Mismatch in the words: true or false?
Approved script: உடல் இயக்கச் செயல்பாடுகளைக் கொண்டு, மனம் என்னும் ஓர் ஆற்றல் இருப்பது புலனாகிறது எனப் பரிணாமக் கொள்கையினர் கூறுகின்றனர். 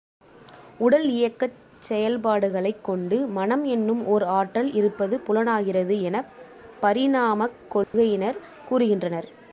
false